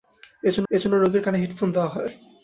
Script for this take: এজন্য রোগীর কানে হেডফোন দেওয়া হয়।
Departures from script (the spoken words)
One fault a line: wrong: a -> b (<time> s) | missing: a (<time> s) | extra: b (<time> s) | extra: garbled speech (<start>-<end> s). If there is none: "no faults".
extra: এজন্য (0.7 s)